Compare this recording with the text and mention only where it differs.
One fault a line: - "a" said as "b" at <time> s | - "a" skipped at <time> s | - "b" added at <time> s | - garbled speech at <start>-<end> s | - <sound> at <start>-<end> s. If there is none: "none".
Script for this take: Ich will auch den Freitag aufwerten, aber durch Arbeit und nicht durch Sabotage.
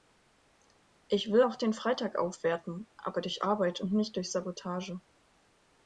none